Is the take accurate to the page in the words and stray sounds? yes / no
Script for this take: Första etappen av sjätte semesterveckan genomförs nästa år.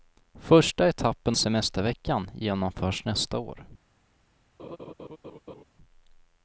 no